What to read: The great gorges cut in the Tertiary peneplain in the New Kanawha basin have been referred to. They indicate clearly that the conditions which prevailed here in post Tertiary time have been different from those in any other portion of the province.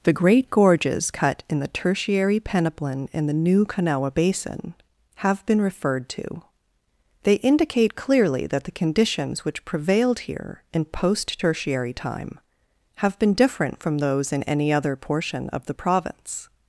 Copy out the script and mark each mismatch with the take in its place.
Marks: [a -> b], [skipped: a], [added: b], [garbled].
The great gorges cut in the Tertiary peneplain in the New Kanawha basin have been referred to. They indicate clearly that the conditions which prevailed here in post Tertiary time have been different from those in any other portion of the province.